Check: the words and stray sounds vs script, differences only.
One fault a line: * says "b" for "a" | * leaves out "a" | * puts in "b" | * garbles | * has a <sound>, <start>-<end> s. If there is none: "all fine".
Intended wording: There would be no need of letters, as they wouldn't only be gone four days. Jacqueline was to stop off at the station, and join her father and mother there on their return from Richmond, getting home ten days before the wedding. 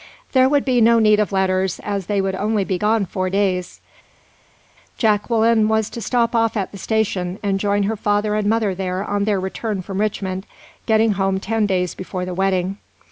* says "would" for "wouldn't"